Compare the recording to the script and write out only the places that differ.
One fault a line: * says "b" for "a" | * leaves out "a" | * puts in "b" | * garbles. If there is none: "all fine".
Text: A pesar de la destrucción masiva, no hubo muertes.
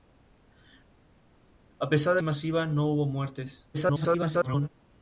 * leaves out "la destrucción"
* garbles